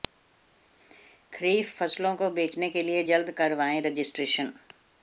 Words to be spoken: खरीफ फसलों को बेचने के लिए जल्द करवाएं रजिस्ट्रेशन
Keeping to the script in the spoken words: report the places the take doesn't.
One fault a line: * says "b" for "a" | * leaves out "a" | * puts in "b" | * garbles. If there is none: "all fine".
all fine